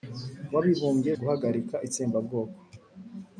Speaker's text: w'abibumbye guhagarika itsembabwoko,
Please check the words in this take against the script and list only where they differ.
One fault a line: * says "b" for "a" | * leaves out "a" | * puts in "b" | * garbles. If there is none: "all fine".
all fine